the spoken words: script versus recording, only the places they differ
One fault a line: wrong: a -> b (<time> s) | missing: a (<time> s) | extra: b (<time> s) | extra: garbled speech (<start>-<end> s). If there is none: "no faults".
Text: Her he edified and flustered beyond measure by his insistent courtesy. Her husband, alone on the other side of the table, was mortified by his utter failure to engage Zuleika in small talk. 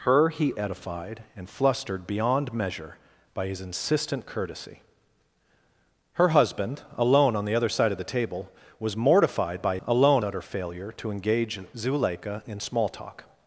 wrong: his -> alone (9.9 s)